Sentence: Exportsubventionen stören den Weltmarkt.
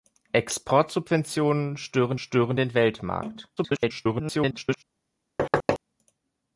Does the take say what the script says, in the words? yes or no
no